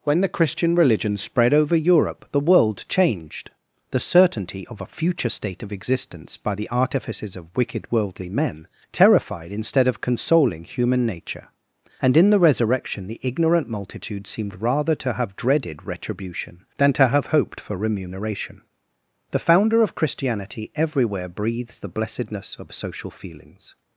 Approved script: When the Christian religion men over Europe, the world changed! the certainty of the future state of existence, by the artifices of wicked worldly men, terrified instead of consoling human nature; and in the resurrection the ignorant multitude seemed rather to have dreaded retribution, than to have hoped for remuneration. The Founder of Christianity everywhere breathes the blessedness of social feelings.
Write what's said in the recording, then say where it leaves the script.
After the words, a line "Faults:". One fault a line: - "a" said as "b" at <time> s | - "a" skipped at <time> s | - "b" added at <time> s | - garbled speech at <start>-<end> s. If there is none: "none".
When the Christian religion spread over Europe, the world changed! the certainty of a future state of existence, by the artifices of wicked worldly men, terrified instead of consoling human nature; and in the resurrection the ignorant multitude seemed rather to have dreaded retribution, than to have hoped for remuneration. The Founder of Christianity everywhere breathes the blessedness of social feelings.
Faults:
- "men" said as "spread" at 1.1 s
- "the" said as "a" at 4.8 s